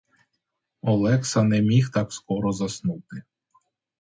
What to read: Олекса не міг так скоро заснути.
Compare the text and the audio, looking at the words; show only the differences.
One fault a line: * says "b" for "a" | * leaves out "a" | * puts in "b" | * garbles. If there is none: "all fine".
all fine